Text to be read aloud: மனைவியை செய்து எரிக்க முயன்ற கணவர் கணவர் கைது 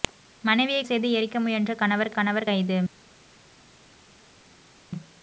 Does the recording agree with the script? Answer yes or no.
yes